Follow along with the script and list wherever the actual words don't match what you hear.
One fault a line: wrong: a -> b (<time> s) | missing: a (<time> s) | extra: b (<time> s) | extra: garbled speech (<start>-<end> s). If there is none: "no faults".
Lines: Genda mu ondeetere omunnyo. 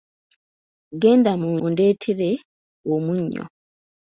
no faults